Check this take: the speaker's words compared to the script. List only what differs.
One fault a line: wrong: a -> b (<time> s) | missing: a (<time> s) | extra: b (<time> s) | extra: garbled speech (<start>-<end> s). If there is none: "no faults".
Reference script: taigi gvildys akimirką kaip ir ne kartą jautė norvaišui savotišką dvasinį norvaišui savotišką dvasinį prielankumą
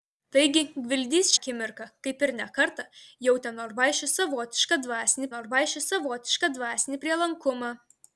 no faults